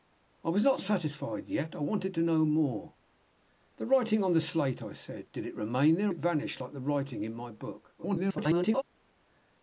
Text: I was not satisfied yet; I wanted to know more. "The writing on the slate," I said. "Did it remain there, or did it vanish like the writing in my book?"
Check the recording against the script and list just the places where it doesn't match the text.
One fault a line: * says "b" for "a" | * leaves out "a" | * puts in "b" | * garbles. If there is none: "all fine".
* leaves out "or did"
* garbles